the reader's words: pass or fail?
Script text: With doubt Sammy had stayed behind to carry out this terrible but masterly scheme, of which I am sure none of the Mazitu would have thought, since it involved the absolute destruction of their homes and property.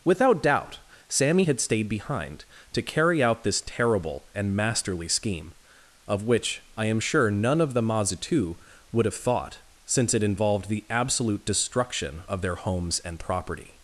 fail